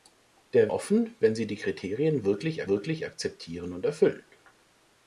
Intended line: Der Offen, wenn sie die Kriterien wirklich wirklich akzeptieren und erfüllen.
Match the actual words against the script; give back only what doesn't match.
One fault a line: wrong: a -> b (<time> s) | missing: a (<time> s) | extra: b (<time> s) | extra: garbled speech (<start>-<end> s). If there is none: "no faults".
no faults